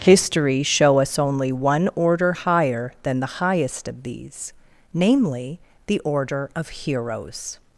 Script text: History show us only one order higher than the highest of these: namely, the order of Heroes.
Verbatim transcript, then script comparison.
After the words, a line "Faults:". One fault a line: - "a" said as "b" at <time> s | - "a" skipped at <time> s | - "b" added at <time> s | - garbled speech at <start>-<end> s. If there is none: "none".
History show us only one order higher than the highest of these: namely, the order of Heroes.
Faults:
none